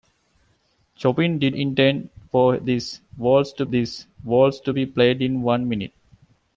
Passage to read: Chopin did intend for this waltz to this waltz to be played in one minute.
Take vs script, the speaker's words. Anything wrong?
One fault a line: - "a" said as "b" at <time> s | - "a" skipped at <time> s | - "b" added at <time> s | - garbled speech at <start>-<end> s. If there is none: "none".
none